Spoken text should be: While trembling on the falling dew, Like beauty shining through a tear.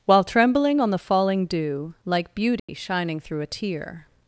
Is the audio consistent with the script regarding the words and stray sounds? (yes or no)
no